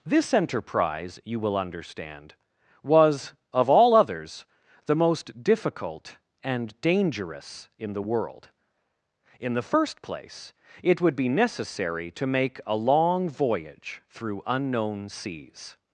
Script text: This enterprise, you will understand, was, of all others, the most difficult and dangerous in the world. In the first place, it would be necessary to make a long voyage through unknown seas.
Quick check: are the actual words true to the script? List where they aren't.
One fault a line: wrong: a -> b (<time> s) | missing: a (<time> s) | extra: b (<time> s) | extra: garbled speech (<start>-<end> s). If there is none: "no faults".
no faults